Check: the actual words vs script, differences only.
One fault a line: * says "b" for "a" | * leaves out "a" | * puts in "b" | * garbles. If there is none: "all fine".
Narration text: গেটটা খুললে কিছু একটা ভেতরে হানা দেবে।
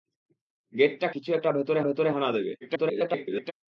* leaves out "খুললে"
* puts in "ভেতরে"
* garbles